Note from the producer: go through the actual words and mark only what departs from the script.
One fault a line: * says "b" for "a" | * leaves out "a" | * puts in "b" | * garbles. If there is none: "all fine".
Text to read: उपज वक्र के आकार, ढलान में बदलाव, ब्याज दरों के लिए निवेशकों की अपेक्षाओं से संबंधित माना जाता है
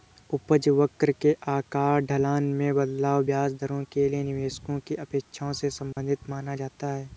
all fine